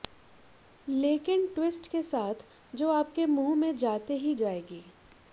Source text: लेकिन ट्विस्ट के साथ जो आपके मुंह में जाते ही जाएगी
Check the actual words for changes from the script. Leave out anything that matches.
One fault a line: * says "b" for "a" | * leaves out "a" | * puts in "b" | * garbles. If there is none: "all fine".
all fine